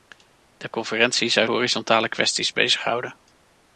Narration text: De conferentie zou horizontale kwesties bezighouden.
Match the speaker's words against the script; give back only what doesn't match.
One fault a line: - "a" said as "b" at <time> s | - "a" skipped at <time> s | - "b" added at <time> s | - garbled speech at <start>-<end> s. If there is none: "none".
none